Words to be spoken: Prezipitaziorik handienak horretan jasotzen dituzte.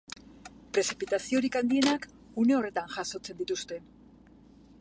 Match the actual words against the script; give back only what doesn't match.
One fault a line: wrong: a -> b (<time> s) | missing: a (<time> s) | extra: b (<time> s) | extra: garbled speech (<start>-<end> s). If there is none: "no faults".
extra: une (2.5 s)